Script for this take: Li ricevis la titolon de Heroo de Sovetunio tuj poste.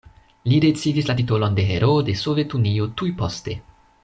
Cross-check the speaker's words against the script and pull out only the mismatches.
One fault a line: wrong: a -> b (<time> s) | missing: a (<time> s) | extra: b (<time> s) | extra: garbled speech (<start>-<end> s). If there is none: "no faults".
no faults